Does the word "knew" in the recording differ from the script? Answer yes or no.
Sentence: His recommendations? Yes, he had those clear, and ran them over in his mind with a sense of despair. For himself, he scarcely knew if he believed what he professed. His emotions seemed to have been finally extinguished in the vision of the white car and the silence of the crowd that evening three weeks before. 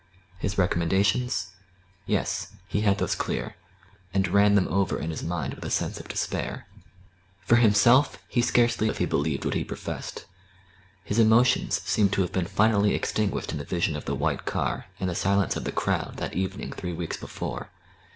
yes